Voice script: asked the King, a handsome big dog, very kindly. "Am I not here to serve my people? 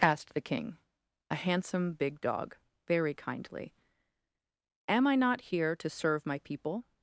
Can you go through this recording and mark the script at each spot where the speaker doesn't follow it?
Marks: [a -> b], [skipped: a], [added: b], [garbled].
asked the King, a handsome big dog, very kindly. "Am I not here to serve my people?